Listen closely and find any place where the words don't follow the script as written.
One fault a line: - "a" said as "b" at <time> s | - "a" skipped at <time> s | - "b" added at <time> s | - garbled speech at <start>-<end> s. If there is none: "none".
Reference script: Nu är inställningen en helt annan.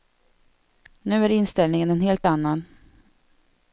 none